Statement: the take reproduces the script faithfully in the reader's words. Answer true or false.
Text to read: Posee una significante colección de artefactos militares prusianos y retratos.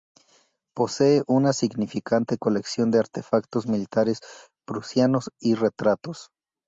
true